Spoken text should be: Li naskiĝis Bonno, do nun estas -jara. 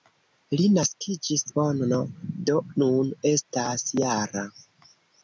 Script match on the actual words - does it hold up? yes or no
yes